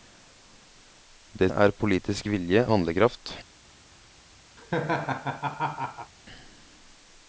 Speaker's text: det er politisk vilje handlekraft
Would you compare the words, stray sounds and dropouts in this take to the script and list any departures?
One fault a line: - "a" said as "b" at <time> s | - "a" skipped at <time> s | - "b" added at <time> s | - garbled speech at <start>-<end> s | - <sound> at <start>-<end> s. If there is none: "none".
- laugh at 4.6-6.1 s